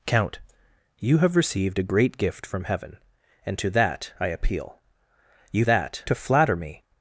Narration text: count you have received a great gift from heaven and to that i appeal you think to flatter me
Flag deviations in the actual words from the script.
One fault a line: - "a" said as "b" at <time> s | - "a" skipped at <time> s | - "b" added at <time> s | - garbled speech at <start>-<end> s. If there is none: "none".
- "think" said as "that" at 5.6 s